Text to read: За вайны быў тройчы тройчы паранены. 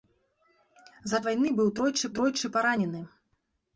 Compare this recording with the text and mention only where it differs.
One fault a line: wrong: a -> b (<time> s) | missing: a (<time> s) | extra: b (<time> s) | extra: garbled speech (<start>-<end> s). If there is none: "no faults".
no faults